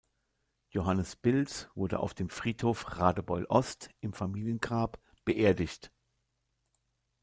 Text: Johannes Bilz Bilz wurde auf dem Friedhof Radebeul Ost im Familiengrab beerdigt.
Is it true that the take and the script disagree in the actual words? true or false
true